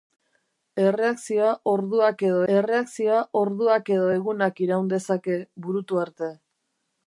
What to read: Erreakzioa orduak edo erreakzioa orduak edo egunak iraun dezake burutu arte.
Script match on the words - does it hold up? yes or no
yes